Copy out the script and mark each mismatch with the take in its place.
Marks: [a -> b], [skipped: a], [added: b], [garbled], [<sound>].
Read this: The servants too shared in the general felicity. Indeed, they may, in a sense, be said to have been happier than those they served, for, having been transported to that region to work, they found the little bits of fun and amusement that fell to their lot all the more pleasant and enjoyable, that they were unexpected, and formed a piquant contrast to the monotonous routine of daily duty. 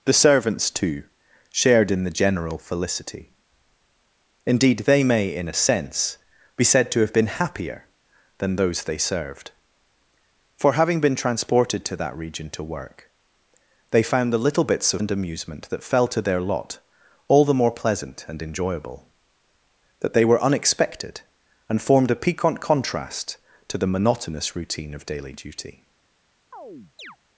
The servants too shared in the general felicity. Indeed, they may, in a sense, be said to have been happier than those they served, for, having been transported to that region to work, they found the little bits of [skipped: fun] and amusement that fell to their lot all the more pleasant and enjoyable, that they were unexpected, and formed a piquant contrast to the monotonous routine of daily duty. [chirp]